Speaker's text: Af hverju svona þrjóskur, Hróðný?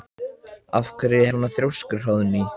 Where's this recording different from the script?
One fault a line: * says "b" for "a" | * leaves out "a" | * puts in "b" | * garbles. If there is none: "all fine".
all fine